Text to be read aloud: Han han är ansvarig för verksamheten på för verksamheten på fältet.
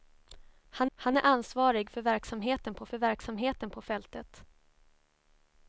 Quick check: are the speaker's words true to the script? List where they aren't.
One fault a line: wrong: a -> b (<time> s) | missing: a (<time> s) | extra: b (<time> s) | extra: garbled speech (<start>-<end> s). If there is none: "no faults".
no faults